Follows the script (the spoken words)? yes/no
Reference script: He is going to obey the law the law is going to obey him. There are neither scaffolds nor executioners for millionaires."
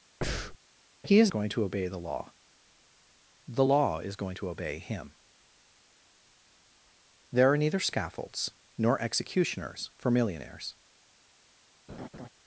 yes